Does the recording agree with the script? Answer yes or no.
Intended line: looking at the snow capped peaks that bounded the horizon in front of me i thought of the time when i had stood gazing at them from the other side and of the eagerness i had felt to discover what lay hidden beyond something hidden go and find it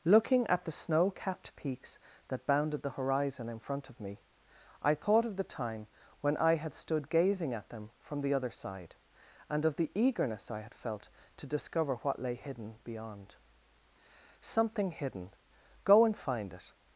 yes